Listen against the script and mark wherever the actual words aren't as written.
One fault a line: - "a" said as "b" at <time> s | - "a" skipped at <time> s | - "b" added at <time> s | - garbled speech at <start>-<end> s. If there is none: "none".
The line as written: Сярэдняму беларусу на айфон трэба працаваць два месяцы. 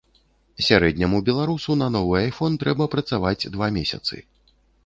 - "новы" added at 2.0 s